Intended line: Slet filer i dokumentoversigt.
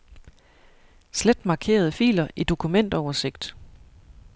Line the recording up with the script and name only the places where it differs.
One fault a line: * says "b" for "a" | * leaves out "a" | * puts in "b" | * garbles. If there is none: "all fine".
* puts in "markerede"